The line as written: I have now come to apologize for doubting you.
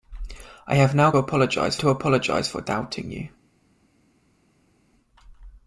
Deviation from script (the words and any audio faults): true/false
true